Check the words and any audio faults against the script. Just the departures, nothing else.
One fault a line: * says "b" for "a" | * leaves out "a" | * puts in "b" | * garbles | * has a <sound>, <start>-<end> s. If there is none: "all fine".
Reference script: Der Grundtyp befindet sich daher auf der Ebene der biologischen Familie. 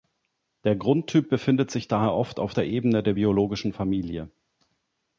* puts in "oft"